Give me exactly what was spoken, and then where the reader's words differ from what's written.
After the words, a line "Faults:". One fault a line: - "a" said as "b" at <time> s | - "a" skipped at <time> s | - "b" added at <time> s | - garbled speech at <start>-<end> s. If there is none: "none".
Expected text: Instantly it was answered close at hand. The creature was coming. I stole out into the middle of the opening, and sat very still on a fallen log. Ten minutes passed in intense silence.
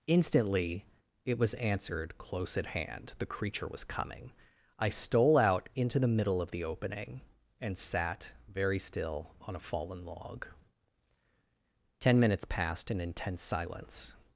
Instantly it was answered close at hand. The creature was coming. I stole out into the middle of the opening, and sat very still on a fallen log. Ten minutes passed in intense silence.
Faults:
none